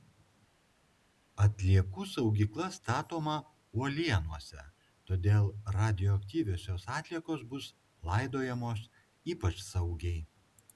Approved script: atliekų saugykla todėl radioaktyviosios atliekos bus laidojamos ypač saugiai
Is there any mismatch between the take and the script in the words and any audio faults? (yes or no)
yes